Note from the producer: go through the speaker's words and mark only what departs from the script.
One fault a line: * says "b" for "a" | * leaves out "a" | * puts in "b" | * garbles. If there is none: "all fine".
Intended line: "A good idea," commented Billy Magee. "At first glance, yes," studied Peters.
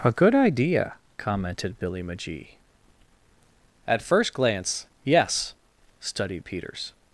all fine